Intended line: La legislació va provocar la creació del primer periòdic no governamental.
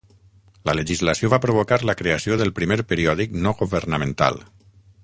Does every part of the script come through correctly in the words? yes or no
yes